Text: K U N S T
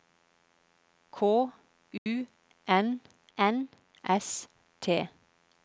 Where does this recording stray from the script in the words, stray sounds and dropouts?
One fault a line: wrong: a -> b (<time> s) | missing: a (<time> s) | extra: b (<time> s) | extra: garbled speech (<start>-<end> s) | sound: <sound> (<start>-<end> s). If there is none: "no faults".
sound: dropout (2.0-2.1 s)
extra: N (3.4 s)